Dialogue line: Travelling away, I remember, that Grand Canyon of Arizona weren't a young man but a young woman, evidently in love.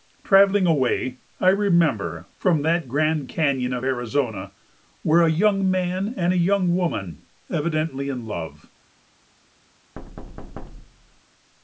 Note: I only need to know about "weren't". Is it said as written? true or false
false